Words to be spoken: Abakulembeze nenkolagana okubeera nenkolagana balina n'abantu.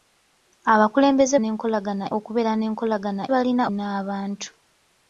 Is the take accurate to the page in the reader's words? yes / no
yes